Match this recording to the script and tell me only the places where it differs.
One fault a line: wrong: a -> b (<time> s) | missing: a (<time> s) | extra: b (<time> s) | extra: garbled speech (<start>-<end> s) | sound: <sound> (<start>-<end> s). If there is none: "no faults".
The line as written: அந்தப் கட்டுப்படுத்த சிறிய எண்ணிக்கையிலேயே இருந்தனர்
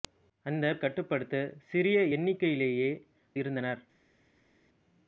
no faults